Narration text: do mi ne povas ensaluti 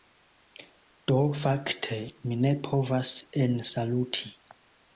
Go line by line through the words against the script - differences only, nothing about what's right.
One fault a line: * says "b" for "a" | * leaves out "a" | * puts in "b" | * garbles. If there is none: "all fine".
* puts in "fakte"